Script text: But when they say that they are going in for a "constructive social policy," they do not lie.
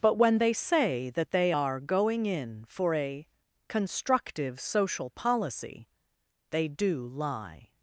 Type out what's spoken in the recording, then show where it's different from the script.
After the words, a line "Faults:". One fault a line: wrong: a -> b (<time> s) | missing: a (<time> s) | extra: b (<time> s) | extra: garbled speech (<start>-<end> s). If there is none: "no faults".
But when they say that they are going in for a "constructive social policy," they do lie.
Faults:
missing: not (7.0 s)